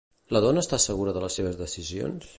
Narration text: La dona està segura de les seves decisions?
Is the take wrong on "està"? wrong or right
right